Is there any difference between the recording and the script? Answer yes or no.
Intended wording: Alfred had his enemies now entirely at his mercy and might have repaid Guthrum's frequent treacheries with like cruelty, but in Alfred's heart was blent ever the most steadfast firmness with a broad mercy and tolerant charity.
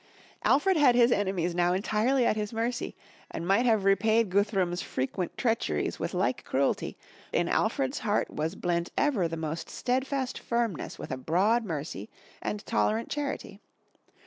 yes